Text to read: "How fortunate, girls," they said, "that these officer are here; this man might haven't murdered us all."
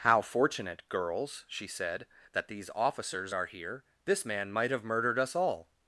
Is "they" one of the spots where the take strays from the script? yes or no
yes